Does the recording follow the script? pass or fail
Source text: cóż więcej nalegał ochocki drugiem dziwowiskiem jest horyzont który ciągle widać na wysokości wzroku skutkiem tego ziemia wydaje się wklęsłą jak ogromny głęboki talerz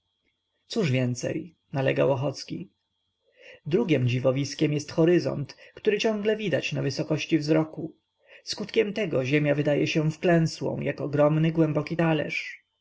pass